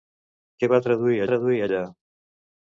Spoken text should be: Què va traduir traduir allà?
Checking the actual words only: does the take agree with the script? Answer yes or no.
yes